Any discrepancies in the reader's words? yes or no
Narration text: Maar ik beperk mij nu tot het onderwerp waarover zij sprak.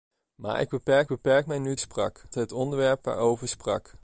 yes